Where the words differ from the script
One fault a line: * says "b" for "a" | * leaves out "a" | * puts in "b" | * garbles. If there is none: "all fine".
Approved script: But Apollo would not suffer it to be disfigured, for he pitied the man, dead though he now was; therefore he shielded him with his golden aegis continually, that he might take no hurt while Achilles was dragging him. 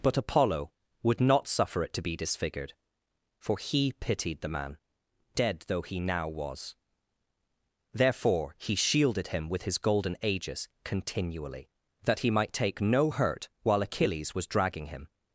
all fine